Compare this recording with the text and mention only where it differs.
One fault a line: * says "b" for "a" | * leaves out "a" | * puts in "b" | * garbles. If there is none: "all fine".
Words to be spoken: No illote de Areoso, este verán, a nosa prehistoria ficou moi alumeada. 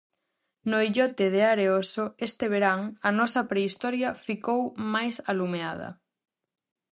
* says "máis" for "moi"